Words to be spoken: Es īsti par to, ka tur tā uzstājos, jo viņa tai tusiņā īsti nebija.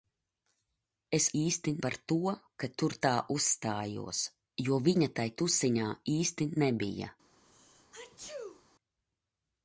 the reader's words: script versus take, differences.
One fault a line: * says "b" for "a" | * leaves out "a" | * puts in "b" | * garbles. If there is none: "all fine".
all fine